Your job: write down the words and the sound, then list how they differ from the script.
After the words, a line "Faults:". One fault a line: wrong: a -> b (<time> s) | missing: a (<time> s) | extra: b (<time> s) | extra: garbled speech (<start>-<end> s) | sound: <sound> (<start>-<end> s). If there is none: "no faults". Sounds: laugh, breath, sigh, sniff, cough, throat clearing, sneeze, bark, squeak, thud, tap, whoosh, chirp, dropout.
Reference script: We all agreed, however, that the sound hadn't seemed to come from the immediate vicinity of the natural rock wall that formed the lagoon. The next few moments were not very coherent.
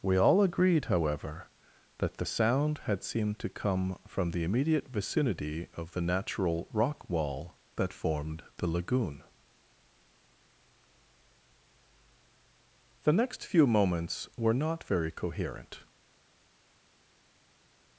We all agreed, however, that the sound had seemed to come from the immediate vicinity of the natural rock wall that formed the lagoon. The next few moments were not very coherent.
Faults:
wrong: hadn't -> had (2.9 s)